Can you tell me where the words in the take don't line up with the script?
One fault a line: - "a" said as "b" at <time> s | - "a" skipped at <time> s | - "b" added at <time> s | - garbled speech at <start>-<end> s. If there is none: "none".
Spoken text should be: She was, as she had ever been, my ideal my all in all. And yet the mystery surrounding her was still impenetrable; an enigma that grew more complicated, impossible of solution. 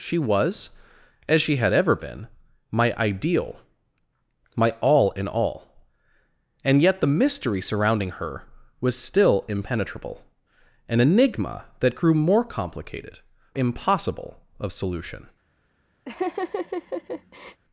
none